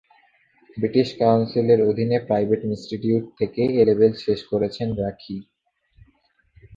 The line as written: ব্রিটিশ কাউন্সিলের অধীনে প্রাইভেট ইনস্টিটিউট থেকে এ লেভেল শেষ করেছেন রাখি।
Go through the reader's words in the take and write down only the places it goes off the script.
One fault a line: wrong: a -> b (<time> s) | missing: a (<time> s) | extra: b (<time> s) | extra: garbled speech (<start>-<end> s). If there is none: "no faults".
no faults